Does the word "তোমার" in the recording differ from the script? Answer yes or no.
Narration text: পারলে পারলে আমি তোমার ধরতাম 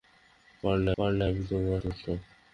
no